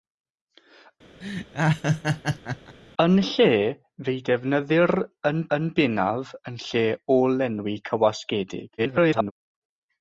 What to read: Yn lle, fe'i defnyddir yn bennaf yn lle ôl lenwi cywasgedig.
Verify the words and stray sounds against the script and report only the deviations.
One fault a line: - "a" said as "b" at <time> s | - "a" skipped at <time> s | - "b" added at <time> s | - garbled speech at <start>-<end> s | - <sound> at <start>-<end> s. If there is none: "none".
- laugh at 1.2-2.8 s
- "yn" added at 5.6 s
- garbled speech at 8.8-9.3 s